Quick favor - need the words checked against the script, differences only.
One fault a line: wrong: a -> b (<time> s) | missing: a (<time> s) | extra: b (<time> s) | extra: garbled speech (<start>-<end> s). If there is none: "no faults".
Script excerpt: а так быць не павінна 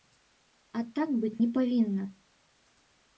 no faults